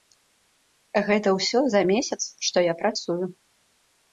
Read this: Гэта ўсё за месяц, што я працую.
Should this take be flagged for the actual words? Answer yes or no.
no